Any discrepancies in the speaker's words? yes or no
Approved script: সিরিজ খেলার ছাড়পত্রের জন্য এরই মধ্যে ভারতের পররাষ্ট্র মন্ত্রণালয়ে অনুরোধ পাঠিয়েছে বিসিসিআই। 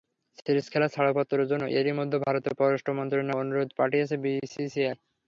no